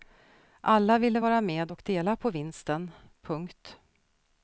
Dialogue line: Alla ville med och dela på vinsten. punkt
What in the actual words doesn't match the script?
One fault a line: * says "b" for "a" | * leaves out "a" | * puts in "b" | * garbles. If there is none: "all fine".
* puts in "vara"